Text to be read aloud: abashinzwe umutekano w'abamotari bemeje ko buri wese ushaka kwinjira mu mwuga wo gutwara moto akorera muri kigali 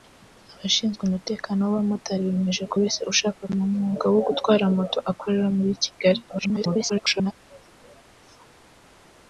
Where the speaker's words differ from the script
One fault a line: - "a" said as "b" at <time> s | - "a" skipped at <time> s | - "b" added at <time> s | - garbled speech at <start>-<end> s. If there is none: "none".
- "buri" skipped at 2.8 s
- "kwinjira" skipped at 3.4 s
- garbled speech at 6.3-7.3 s